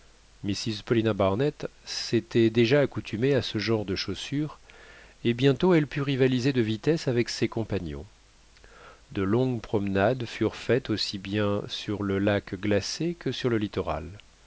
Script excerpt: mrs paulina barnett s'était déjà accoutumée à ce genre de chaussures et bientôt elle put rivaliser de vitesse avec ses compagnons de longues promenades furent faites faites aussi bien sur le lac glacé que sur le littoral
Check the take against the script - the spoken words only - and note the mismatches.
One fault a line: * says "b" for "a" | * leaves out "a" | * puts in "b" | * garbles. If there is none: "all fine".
* leaves out "faites"